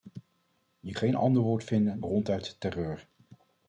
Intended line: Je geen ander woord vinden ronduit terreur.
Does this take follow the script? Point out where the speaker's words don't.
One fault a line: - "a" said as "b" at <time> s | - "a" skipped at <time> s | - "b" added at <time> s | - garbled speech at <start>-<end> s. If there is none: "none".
none